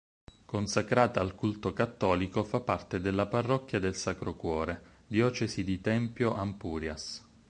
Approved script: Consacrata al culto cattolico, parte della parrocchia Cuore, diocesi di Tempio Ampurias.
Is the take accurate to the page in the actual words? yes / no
no